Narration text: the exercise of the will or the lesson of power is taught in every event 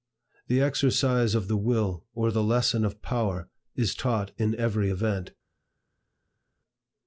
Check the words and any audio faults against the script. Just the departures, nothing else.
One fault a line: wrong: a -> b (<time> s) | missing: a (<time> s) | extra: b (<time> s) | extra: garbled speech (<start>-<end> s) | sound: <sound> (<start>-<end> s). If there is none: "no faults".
no faults